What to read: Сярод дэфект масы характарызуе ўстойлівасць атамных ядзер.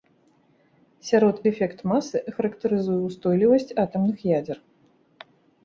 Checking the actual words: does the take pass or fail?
pass